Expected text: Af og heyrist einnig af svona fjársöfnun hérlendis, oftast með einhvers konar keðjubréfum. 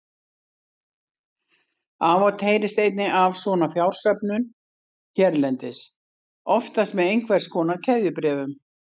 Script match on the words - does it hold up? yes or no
yes